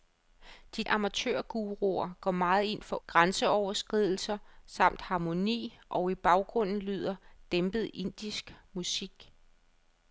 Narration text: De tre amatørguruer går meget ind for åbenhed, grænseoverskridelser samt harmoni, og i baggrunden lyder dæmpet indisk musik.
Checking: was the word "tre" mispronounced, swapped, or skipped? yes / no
yes